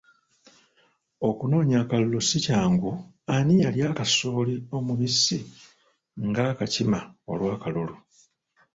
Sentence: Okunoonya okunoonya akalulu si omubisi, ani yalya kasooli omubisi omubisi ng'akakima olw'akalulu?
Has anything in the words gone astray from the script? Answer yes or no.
yes